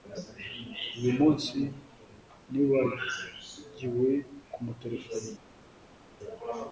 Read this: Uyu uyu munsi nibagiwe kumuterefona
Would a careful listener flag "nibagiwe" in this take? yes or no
no